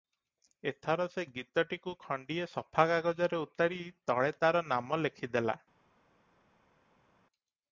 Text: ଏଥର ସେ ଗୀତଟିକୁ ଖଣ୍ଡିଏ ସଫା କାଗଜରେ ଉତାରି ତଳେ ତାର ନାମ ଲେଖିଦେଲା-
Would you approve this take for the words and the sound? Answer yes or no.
yes